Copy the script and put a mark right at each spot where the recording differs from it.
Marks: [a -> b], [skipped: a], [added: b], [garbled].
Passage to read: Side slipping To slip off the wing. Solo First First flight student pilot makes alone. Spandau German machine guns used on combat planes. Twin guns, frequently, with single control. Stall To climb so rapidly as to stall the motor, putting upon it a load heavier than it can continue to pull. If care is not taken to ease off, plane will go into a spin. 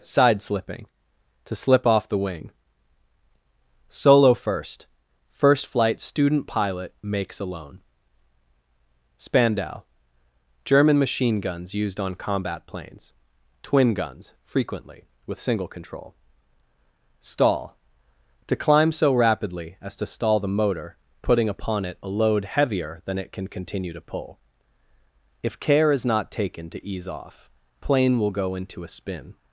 Side slipping To slip off the wing. Solo First First flight student pilot makes alone. Spandau German machine guns used on combat planes. Twin guns, frequently, with single control. Stall To climb so rapidly as to stall the motor, putting upon it a load heavier than it can continue to pull. If care is not taken to ease off, plane will go into a spin.